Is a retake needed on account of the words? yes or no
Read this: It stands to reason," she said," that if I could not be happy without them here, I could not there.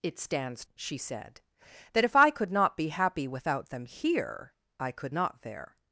yes